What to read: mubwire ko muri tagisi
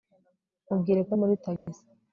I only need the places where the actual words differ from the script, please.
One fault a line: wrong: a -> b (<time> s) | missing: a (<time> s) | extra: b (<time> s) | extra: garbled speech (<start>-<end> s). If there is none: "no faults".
no faults